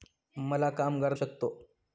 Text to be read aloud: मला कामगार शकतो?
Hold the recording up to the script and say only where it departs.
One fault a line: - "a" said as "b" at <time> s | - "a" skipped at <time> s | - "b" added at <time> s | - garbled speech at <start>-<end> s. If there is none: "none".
none